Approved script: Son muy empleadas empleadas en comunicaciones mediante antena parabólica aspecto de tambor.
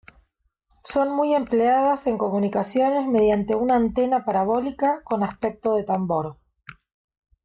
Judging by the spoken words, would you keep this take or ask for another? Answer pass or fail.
fail